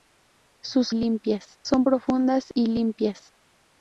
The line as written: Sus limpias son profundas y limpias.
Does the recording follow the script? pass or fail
pass